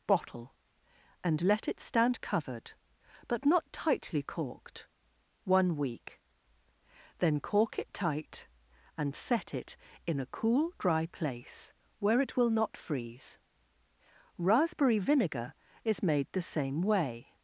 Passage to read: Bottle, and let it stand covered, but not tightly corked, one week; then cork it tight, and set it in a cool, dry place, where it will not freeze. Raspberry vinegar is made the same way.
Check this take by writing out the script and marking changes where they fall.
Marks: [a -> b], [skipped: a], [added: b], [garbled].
Bottle, and let it stand covered, but not tightly corked, one week; then cork it tight, and set it in a cool, dry place, where it will not freeze. Raspberry vinegar is made the same way.